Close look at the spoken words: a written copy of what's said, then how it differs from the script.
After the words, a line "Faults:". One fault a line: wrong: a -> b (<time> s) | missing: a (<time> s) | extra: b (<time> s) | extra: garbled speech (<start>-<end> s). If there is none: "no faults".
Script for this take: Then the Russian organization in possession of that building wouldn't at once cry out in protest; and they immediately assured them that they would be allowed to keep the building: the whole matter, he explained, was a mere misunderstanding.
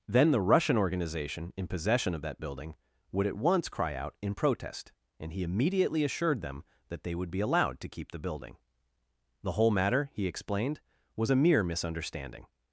Then the Russian organization in possession of that building would at once cry out in protest; and he immediately assured them that they would be allowed to keep the building: the whole matter, he explained, was a mere misunderstanding.
Faults:
wrong: wouldn't -> would (3.1 s)
wrong: they -> he (5.3 s)